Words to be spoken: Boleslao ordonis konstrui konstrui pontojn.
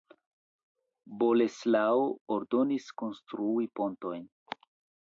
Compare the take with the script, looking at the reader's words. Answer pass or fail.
fail